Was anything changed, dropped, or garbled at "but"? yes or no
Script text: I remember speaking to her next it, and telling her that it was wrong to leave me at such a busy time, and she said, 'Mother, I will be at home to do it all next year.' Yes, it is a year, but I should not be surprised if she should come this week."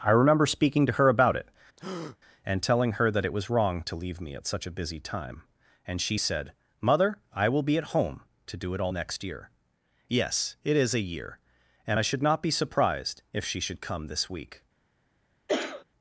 yes